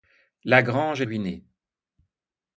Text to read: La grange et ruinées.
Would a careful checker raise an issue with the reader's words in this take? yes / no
no